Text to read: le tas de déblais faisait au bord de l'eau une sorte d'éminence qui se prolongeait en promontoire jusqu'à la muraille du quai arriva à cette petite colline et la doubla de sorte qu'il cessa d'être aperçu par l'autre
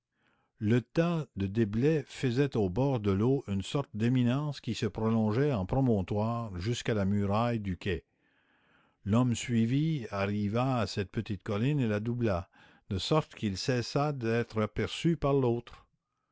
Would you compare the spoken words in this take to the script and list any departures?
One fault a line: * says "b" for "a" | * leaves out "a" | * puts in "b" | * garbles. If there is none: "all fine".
* puts in "l'homme suivi"